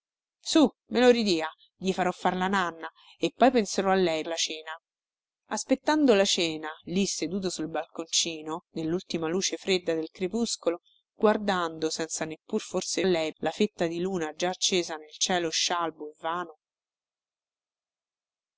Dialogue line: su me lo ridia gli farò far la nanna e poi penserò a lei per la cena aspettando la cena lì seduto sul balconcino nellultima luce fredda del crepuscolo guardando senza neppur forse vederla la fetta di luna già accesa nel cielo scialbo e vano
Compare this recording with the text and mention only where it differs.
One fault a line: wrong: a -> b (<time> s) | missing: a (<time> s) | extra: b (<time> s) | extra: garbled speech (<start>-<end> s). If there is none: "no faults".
missing: per (4.2 s)
wrong: vederla -> lei (13.0 s)